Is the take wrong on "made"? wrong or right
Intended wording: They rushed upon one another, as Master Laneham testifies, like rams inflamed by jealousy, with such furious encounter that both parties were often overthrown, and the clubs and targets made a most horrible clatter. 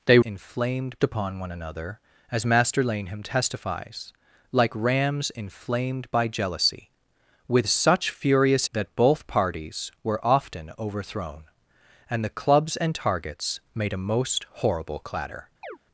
right